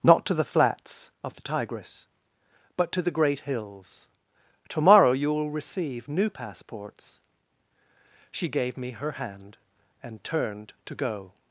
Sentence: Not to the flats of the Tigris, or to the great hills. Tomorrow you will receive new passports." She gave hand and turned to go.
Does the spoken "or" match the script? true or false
false